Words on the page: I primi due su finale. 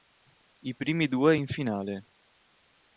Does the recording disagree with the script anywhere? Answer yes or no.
yes